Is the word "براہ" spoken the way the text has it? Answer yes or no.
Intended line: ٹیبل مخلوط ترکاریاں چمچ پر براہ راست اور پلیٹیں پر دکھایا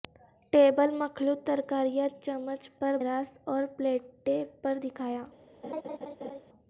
no